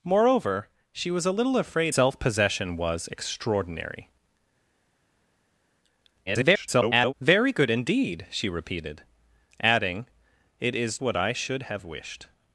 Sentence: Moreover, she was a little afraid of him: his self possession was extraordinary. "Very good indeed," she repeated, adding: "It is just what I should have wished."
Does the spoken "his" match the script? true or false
false